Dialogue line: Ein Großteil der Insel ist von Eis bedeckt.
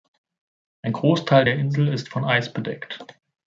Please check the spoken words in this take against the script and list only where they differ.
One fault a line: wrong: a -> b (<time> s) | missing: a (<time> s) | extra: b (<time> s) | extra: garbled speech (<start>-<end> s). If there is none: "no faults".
no faults